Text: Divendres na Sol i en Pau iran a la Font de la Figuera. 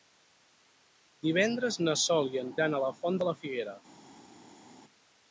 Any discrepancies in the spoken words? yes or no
yes